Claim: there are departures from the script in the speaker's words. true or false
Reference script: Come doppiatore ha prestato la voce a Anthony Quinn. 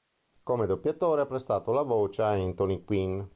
false